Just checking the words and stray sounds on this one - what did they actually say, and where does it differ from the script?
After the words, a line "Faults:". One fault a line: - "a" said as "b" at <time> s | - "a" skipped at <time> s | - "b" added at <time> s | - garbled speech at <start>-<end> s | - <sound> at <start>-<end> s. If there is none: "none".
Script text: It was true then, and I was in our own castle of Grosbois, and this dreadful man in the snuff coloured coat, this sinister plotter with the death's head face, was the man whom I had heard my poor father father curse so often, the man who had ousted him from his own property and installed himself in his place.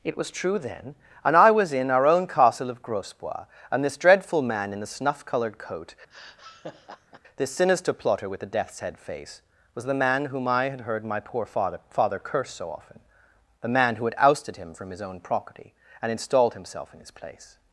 It was true then, and I was in our own castle of Grosbois, and this dreadful man in the snuff coloured coat, this sinister plotter with the death's head face, was the man whom I had heard my poor father father curse so often, the man who had ousted him from his own property and installed himself in his place.
Faults:
- laugh at 6.1-7.2 s